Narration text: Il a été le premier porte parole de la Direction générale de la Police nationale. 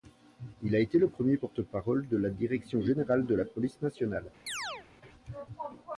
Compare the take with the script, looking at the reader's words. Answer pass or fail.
pass